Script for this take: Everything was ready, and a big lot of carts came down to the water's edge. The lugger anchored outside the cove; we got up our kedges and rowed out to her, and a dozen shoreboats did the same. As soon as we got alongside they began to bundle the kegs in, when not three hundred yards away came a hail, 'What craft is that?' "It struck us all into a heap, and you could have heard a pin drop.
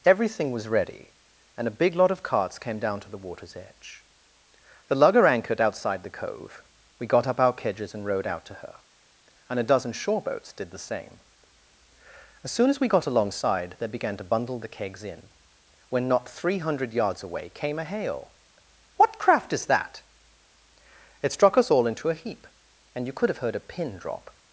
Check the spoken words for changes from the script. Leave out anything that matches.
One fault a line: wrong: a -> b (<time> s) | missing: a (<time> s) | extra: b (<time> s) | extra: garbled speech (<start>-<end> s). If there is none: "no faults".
no faults